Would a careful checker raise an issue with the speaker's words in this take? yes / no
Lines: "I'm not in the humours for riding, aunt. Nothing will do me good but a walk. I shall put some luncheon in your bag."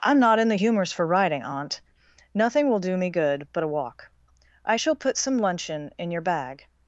no